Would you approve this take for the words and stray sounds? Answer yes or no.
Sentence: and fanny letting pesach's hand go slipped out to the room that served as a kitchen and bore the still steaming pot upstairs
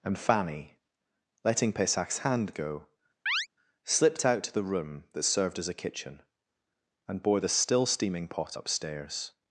no